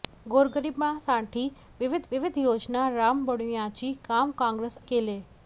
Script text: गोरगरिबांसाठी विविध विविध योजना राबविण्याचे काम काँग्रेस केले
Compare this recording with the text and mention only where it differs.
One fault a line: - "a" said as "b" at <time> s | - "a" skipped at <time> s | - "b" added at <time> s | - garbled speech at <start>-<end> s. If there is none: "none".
none